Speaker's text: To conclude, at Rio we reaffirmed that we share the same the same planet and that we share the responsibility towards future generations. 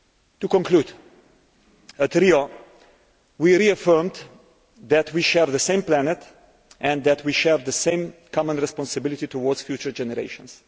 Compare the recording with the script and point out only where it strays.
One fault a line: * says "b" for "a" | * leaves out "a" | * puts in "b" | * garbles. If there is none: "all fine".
* leaves out "the same"
* puts in "same common"